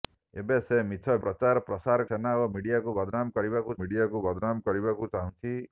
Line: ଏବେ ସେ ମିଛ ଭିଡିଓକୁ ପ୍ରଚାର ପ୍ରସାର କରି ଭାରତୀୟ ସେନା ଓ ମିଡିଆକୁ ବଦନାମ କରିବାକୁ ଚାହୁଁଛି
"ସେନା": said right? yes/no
no